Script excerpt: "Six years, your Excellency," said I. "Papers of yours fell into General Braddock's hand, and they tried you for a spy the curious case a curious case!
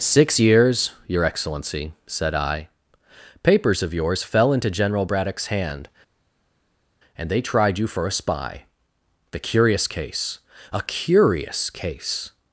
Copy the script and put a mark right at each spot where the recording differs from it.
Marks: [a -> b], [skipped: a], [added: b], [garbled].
"Six years, your Excellency," said I. "Papers of yours fell into General Braddock's hand, and they tried you for a spy the curious case a curious case!